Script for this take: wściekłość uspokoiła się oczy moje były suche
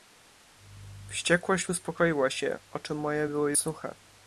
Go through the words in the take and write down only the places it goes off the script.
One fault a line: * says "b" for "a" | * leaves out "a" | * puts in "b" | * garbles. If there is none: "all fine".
all fine